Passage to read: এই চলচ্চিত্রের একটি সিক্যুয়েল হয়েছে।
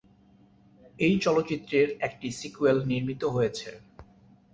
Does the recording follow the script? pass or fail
fail